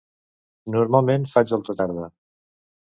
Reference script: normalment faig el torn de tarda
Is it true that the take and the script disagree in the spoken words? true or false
true